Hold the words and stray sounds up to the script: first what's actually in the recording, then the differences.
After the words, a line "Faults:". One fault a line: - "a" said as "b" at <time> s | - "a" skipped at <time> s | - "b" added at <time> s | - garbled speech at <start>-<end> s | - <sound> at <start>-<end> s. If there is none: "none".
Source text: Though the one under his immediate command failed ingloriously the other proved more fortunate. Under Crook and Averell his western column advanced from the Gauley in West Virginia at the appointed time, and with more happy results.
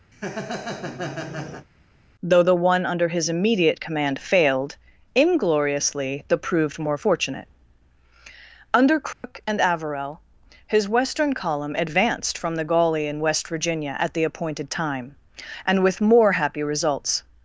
Though the one under his immediate command failed ingloriously the proved more fortunate. Under Crook and Averell his western column advanced from the Gauley in West Virginia at the appointed time, and with more happy results.
Faults:
- laugh at 0.1-1.7 s
- "other" skipped at 6.4 s
- dropout at 9.1-9.2 s